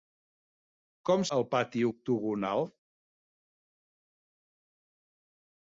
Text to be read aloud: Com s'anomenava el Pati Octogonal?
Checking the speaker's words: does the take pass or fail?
fail